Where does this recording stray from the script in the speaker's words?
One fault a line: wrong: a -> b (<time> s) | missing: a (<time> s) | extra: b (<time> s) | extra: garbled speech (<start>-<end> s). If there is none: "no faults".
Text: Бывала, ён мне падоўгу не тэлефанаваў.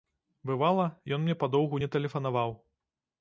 no faults